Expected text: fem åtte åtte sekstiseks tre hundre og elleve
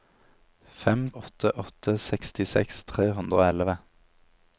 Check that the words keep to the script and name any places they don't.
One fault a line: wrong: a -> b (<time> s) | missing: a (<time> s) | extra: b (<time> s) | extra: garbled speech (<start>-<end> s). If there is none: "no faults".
no faults